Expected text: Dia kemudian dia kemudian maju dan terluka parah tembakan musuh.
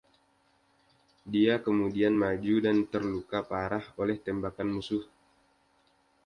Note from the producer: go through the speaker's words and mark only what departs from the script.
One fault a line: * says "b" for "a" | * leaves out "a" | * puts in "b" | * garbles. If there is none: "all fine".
* leaves out "dia kemudian"
* puts in "oleh"